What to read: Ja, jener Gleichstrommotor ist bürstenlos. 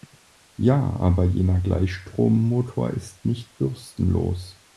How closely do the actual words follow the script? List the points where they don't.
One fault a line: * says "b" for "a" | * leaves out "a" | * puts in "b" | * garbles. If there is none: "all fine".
* puts in "aber"
* puts in "nicht"